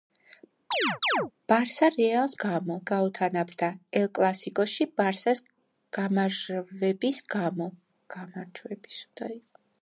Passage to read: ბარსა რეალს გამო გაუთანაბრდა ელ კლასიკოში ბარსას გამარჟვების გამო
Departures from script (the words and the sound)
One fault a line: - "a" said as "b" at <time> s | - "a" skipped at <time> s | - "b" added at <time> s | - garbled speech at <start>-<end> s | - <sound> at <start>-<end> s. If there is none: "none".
- chirp at 0.7-1.3 s